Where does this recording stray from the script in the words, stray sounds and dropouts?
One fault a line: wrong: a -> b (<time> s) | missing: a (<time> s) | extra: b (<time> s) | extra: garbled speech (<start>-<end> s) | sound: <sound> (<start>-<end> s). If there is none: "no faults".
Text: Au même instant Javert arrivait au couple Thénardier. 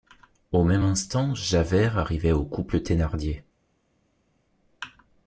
no faults